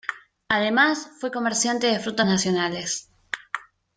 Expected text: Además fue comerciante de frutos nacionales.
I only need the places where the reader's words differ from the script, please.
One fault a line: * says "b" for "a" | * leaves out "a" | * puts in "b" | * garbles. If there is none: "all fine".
all fine